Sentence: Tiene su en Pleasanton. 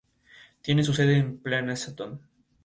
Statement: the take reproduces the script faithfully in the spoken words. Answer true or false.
false